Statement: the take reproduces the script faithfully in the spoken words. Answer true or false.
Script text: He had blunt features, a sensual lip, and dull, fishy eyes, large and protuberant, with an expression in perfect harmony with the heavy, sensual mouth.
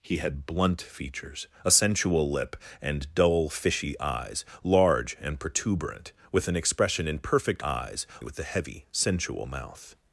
false